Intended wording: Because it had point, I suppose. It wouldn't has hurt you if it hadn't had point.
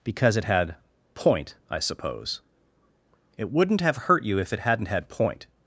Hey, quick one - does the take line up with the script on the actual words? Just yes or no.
no